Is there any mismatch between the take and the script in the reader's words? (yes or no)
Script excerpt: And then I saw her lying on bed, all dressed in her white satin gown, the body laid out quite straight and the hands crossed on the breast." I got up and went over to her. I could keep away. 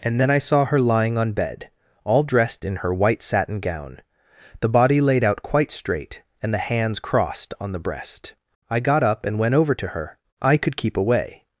no